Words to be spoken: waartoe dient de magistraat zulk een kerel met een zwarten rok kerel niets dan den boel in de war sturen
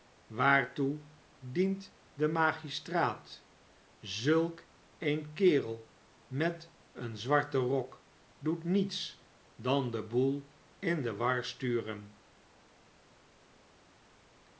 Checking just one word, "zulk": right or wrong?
right